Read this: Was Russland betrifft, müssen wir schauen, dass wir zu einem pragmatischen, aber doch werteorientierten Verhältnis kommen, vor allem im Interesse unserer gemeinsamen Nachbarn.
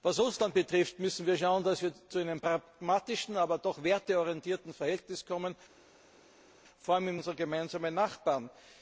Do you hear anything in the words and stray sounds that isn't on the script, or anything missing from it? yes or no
yes